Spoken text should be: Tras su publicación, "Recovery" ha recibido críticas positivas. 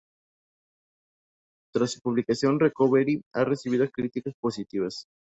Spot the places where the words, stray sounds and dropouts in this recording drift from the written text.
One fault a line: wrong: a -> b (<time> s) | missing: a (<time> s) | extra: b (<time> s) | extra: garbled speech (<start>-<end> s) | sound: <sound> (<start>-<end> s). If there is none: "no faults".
no faults